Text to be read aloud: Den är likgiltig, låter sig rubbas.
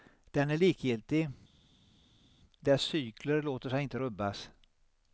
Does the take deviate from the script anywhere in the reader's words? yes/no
yes